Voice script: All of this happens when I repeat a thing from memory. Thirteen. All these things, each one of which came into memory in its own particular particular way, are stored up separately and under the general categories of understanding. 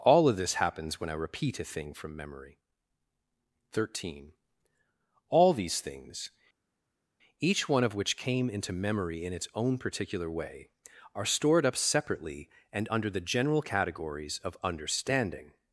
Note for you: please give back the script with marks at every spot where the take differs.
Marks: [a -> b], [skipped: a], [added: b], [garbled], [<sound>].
All of this happens when I repeat a thing from memory. Thirteen. All these things, each one of which came into memory in its own particular [skipped: particular] way, are stored up separately and under the general categories of understanding.